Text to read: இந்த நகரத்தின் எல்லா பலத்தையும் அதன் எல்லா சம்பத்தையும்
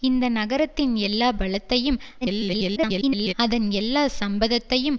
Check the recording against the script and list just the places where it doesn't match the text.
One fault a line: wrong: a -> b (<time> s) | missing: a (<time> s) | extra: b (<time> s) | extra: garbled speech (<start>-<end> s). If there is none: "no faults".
extra: garbled speech (2.2-3.3 s)